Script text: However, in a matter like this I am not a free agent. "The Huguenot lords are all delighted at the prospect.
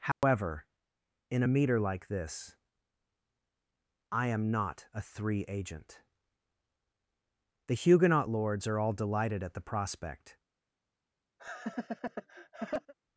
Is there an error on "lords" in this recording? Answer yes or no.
no